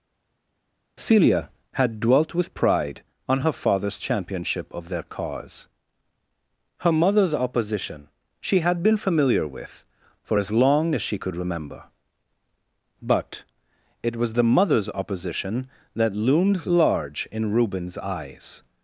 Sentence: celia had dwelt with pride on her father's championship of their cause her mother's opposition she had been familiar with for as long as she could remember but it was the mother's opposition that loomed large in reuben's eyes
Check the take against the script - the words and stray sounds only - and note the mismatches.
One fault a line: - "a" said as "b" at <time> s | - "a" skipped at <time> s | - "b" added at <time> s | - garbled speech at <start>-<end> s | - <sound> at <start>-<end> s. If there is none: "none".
none